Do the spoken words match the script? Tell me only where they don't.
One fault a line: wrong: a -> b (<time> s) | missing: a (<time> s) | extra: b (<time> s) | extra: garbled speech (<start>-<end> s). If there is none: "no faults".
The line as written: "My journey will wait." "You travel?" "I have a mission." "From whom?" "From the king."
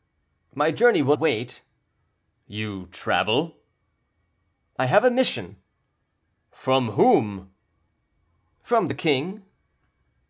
no faults